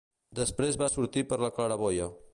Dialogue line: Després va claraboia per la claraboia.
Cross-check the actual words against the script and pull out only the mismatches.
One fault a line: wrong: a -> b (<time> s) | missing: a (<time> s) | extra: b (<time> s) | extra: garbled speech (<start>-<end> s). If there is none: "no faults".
wrong: claraboia -> sortir (0.9 s)